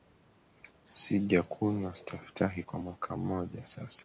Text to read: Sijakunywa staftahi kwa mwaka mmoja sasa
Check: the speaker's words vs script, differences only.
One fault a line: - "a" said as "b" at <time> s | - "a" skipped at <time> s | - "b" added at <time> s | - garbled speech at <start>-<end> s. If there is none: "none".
none